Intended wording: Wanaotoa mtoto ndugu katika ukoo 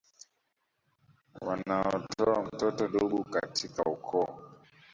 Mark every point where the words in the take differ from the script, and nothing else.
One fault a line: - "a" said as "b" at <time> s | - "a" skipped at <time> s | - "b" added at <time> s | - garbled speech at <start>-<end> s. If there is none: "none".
none